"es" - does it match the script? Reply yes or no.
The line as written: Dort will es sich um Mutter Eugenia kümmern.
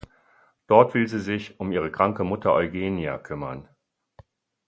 no